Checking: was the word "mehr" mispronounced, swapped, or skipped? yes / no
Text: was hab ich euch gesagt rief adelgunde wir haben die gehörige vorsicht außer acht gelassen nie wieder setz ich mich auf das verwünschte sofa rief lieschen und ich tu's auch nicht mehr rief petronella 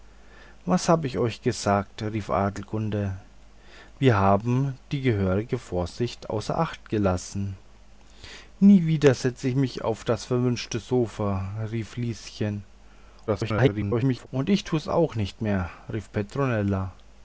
no